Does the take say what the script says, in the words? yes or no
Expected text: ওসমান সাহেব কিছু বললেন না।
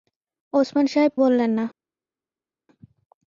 no